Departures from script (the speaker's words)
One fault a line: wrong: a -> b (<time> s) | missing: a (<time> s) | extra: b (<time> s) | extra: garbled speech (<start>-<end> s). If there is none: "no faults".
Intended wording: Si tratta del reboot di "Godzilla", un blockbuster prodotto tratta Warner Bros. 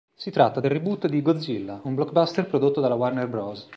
wrong: tratta -> dalla (2.8 s)